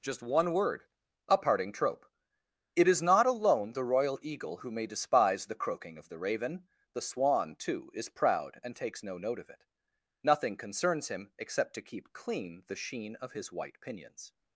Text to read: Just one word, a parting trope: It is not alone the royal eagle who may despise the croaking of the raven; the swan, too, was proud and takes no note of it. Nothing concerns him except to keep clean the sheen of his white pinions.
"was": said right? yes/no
no